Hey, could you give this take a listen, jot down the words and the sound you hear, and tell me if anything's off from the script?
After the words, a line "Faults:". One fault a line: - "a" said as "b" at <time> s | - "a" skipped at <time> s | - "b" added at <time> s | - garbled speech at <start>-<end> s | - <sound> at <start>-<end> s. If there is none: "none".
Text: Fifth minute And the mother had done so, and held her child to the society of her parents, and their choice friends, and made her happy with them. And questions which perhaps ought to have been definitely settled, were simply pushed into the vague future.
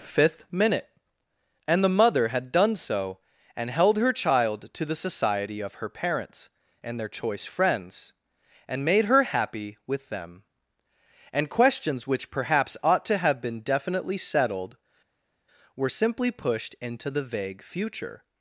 Fifth minute And the mother had done so, and held her child to the society of her parents, and their choice friends, and made her happy with them. And questions which perhaps ought to have been definitely settled, were simply pushed into the vague future.
Faults:
none